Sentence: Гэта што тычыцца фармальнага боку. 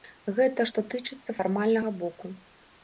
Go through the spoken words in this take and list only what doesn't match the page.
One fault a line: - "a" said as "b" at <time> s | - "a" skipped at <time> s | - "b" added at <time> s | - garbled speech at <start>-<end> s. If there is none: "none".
none